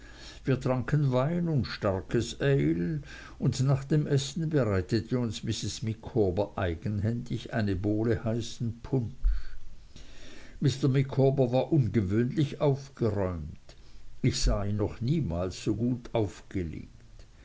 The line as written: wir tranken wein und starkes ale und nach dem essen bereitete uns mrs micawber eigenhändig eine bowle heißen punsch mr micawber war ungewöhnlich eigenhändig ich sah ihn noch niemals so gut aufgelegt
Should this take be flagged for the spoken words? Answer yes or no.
yes